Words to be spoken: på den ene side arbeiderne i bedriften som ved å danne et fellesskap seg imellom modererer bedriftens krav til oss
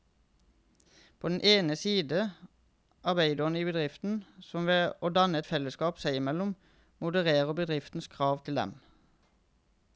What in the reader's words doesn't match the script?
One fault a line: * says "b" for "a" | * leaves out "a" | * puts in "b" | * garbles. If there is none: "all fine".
* says "dem" for "oss"